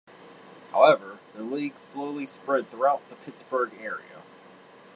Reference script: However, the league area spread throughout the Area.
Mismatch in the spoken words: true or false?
true